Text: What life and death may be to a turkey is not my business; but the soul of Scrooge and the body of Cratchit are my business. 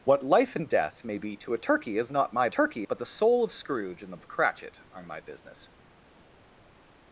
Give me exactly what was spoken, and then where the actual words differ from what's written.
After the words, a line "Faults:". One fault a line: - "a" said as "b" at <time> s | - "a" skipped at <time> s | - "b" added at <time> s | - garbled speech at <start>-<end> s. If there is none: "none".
What life and death may be to a turkey is not my turkey; but the soul of Scrooge and the of Cratchit are my business.
Faults:
- "business" said as "turkey" at 2.5 s
- "body" skipped at 4.2 s